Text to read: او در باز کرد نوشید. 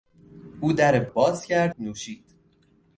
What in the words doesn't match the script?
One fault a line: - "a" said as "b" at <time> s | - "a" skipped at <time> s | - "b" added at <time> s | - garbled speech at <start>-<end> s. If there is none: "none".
none